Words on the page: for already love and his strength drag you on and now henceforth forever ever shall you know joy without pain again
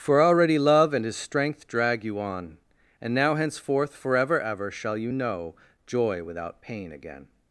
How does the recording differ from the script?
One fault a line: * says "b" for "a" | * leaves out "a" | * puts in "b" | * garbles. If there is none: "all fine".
all fine